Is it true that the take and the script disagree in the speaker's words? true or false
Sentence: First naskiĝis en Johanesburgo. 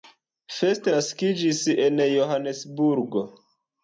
false